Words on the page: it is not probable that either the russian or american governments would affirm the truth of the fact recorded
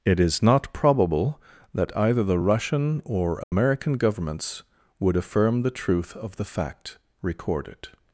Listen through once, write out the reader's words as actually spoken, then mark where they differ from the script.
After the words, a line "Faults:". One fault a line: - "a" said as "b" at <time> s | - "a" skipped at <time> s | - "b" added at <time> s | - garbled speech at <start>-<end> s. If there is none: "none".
it is not probable that either the russian or american governments would affirm the truth of the fact recorded
Faults:
none